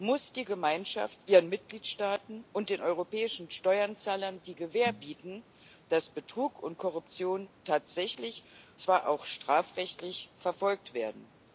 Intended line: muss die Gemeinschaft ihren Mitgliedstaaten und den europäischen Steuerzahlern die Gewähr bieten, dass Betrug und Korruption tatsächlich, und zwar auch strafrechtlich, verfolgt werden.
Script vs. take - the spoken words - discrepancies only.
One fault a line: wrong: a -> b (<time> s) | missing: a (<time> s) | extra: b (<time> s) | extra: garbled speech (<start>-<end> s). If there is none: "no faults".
missing: und (8.4 s)